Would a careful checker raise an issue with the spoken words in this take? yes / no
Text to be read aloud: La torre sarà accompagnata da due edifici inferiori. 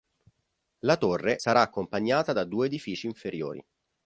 no